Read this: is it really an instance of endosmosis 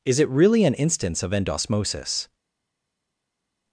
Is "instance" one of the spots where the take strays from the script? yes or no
no